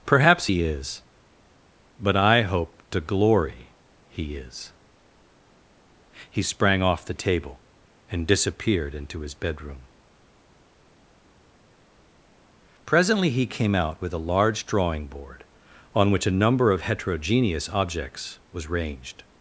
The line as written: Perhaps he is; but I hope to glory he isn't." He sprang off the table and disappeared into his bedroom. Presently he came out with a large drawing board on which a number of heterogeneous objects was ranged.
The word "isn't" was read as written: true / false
false